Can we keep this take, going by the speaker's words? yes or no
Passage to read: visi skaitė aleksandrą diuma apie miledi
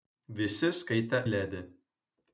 no